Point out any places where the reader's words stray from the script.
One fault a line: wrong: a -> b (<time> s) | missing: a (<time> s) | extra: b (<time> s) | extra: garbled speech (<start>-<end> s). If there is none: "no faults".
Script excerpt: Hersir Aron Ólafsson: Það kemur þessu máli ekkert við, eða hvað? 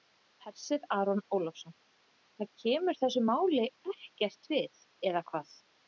no faults